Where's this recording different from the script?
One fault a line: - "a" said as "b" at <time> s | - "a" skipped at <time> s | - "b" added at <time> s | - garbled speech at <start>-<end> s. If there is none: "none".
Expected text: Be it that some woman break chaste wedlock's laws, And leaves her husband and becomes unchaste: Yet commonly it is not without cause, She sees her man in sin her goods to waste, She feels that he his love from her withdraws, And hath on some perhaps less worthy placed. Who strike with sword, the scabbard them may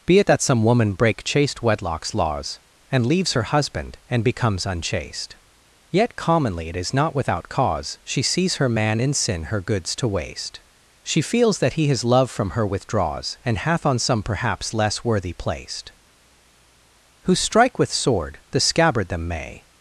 none